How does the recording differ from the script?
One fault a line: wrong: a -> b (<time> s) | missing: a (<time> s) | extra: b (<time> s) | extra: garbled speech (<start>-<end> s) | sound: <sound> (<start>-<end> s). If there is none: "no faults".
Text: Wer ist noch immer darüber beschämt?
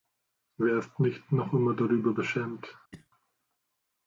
extra: nicht (1.0 s)
sound: cough (2.9-3.1 s)